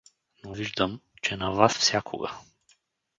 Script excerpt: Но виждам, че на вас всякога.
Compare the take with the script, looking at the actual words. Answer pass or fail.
pass